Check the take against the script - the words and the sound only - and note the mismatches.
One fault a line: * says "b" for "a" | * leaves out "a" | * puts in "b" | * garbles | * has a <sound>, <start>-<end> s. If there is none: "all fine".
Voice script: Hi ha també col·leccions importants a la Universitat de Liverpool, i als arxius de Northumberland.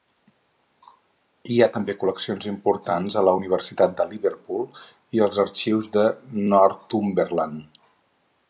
all fine